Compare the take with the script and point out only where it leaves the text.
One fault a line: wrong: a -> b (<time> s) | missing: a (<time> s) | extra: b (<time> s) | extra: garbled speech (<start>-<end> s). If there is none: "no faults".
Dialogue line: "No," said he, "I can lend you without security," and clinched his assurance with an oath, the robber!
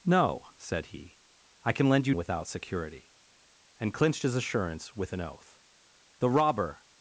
no faults